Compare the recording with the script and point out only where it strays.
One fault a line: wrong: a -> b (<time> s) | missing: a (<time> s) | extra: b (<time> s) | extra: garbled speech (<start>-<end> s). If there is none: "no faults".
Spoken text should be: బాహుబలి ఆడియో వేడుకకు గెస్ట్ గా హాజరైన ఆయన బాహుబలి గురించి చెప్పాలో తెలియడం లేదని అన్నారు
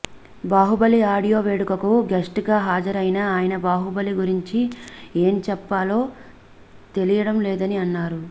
extra: ఏం (5.2 s)